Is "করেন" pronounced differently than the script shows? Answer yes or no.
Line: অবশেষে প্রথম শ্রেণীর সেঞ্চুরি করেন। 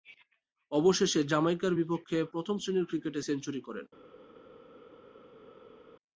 no